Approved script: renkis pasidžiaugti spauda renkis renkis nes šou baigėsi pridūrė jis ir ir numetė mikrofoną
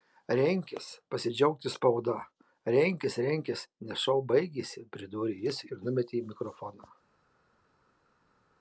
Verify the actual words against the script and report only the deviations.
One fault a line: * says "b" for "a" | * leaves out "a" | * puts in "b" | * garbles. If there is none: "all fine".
* leaves out "ir"